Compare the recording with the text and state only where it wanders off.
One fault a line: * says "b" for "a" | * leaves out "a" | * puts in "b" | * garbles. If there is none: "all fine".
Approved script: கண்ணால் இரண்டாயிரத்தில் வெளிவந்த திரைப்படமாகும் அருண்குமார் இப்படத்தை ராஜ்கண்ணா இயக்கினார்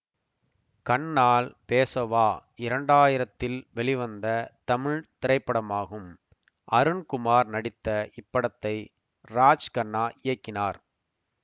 * puts in "பேசவா"
* puts in "தமிழ்"
* puts in "நடித்த"